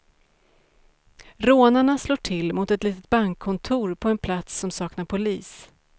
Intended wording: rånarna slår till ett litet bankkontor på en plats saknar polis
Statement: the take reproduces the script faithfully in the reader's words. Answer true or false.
false